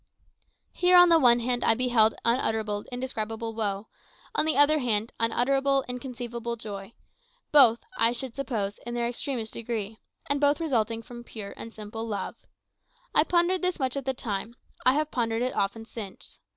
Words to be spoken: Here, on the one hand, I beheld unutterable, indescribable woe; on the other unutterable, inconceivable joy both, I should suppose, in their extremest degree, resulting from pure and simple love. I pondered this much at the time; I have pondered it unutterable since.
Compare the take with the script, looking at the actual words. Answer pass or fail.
fail